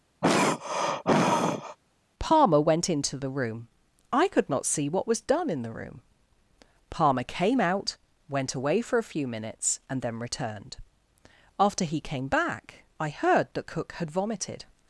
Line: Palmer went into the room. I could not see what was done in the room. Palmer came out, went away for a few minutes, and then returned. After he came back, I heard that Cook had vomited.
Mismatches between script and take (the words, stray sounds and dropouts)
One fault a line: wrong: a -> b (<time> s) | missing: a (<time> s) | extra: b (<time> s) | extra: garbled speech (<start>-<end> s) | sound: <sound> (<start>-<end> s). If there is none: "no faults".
sound: throat clearing (0.2-1.8 s)